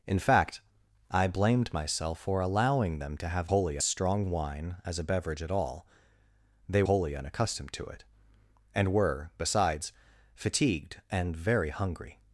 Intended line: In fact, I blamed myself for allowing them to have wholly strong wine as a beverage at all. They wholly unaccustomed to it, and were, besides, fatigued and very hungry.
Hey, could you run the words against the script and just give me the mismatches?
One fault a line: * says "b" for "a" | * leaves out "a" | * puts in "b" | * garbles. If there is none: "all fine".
all fine